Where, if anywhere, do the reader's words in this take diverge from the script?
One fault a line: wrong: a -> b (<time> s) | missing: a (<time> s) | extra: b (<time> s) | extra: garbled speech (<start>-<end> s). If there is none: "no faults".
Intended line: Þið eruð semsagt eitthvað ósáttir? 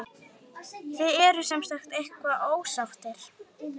no faults